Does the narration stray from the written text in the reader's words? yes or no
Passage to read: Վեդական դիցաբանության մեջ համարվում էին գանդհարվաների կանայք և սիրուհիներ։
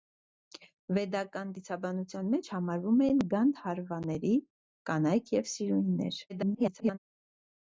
yes